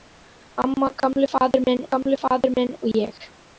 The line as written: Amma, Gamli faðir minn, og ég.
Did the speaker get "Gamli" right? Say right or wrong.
right